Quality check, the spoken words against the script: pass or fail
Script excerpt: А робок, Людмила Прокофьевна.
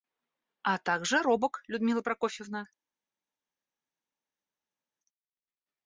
fail